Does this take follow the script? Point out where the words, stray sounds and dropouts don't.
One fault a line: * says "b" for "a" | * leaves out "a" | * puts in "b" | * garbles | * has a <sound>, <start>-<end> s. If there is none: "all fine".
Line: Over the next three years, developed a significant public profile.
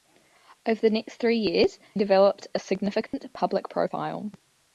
* has a dropout, 3.1-3.1 s